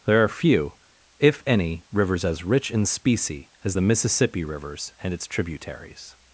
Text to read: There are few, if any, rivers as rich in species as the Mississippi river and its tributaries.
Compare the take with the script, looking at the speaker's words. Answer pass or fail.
fail